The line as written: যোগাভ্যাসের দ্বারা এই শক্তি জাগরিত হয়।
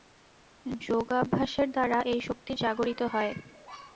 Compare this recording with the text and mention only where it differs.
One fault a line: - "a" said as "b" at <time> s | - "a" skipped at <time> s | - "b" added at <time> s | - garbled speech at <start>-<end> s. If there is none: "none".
none